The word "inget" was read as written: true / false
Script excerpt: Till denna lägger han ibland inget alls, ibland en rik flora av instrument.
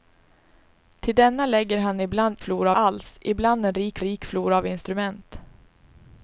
false